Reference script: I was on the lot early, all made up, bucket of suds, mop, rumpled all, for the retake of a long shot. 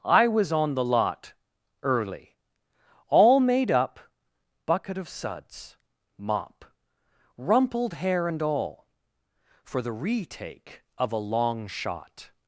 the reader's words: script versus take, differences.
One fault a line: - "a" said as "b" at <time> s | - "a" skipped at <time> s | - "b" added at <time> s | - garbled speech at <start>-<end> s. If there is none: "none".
- "hair and" added at 7.9 s